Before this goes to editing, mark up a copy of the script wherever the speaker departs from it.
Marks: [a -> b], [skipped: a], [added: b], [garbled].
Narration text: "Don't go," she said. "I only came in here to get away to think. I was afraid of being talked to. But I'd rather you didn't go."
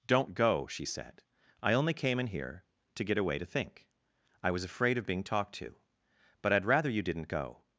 "Don't go," she said. "I only came in here to get away to think. I was afraid of being talked to. But I'd rather you didn't go."